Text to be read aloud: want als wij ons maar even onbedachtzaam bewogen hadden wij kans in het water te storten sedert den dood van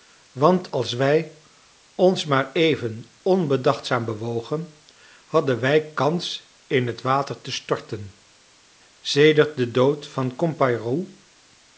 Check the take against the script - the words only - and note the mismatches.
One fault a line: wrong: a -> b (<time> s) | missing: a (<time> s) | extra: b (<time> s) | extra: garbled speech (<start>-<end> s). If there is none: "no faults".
no faults